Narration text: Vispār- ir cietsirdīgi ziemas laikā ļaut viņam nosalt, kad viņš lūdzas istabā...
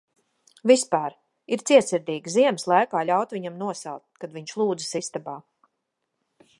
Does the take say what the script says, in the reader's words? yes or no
yes